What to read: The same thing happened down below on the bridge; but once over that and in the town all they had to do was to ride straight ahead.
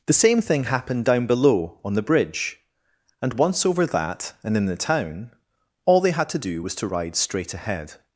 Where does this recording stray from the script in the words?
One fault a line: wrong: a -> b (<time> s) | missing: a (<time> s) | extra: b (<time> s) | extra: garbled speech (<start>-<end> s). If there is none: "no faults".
wrong: but -> and (3.2 s)